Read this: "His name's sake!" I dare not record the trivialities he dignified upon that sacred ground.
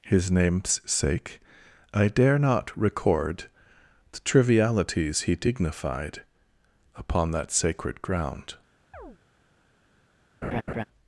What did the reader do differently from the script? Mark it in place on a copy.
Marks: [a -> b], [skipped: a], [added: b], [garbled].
"His name's sake!" I dare not record the trivialities he dignified upon that sacred ground.